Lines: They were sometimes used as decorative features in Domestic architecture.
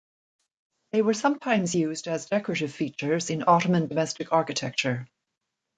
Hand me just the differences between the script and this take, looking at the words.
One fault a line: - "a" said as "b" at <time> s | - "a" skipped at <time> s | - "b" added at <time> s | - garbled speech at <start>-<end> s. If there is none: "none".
- "Ottoman" added at 3.5 s